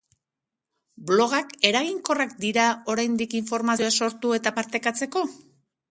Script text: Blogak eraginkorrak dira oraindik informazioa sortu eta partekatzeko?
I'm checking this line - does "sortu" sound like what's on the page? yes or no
yes